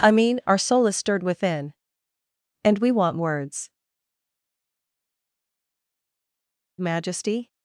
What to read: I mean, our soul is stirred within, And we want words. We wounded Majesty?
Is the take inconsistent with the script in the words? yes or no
yes